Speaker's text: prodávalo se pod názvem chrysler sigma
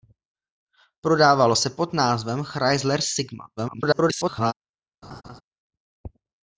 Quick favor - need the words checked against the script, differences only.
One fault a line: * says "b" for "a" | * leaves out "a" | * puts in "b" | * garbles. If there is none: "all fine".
* garbles